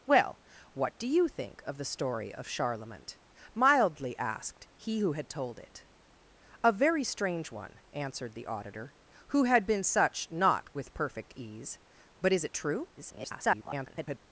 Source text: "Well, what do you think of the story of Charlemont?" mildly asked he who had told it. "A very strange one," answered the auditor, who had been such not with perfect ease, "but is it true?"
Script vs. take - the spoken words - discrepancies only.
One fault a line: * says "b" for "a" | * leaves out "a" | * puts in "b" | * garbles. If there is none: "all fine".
* garbles